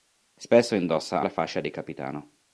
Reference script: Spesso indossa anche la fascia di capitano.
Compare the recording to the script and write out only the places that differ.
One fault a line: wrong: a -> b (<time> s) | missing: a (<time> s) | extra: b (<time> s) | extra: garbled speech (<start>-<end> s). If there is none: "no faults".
missing: anche (1.2 s)